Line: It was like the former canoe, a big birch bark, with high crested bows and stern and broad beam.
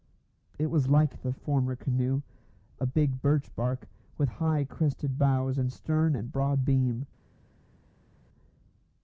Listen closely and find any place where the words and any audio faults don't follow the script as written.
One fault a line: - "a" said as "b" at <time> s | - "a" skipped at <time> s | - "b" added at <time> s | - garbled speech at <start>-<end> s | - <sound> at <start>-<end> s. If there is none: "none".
none